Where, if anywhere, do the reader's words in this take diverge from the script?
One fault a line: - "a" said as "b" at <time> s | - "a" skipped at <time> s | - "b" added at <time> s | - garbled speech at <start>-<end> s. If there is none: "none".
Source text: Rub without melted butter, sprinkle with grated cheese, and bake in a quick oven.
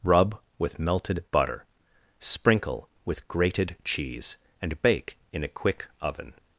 - "without" said as "with" at 0.6 s